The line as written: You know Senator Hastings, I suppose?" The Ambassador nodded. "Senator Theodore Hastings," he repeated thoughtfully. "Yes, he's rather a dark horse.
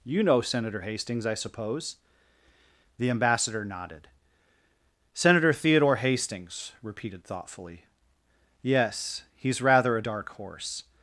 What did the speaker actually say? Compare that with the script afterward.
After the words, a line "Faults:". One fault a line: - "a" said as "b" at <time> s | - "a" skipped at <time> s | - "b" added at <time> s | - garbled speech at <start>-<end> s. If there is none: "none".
You know Senator Hastings, I suppose?" The Ambassador nodded. "Senator Theodore Hastings," repeated thoughtfully. "Yes, he's rather a dark horse.
Faults:
- "he" skipped at 6.7 s